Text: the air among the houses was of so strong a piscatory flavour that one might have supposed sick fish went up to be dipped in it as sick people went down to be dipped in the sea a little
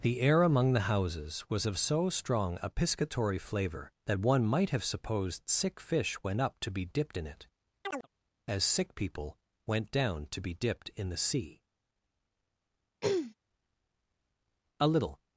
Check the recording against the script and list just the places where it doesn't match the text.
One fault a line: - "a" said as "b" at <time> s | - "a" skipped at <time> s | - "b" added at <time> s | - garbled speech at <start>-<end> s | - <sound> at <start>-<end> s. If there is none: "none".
- chirp at 7.8-8.1 s
- throat clearing at 13.0-13.4 s